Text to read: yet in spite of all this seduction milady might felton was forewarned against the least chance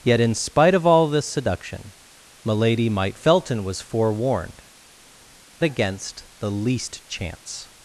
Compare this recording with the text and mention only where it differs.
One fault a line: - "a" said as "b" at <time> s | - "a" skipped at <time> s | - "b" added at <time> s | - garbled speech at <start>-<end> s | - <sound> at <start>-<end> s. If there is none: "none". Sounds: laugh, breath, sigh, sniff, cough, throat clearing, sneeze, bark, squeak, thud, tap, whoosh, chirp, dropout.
none